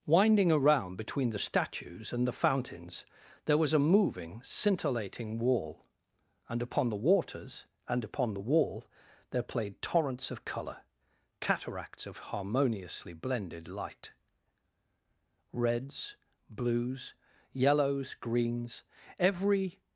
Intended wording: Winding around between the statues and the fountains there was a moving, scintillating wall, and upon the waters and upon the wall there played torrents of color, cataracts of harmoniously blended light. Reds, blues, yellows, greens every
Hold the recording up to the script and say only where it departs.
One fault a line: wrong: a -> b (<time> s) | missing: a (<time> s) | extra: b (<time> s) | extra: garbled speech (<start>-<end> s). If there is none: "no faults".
no faults